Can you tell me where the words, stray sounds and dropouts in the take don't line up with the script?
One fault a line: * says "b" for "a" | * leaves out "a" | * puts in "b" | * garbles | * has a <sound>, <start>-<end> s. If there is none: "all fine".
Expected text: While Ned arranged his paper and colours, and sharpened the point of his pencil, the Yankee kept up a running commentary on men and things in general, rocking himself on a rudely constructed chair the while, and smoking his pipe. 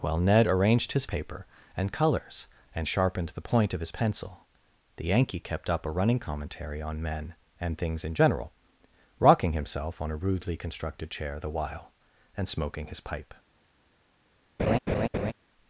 * has a laugh, 14.6-15.3 s